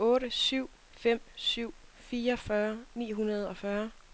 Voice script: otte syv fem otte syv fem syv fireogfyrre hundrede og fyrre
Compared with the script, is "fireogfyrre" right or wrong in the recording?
wrong